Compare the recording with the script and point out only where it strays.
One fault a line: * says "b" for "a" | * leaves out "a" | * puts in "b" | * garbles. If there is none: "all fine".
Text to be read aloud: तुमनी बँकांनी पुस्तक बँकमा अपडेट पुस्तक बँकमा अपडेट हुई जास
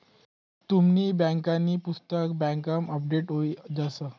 * leaves out "पुस्तक बँकमा अपडेट"